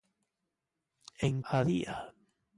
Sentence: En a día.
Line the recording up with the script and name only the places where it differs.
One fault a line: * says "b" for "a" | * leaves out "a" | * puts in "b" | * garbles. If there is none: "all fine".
all fine